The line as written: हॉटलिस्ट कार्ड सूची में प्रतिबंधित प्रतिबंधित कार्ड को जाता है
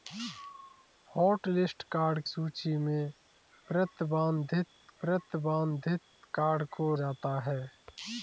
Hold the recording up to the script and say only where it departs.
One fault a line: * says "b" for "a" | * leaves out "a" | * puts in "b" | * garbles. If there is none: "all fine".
all fine